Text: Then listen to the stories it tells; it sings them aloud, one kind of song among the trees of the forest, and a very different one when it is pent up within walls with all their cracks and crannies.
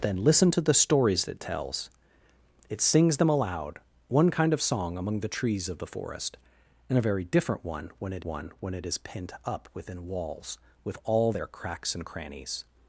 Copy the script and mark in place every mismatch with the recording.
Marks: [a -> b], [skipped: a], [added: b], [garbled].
Then listen to the stories it tells; it sings them aloud, one kind of song among the trees of the forest, and a very different one when it [added: one when it] is pent up within walls with all their cracks and crannies.